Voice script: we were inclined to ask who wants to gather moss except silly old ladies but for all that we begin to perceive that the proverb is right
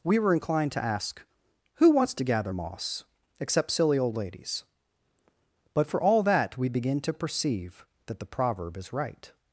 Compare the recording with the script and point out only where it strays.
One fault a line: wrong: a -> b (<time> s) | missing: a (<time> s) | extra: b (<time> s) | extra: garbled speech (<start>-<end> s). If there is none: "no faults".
no faults